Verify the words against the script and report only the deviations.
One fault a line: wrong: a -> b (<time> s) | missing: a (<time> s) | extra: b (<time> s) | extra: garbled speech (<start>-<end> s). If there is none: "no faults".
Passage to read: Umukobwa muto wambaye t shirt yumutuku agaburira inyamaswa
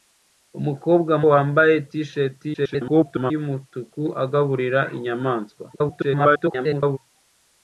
missing: muto (1.1 s)
extra: garbled speech (2.5-3.3 s)
extra: garbled speech (5.7-7.0 s)